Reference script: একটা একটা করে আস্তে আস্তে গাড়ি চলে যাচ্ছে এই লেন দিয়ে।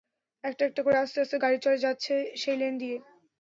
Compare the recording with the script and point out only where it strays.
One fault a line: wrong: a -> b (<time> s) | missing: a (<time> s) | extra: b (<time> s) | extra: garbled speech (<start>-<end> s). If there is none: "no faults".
wrong: এই -> সেই (2.4 s)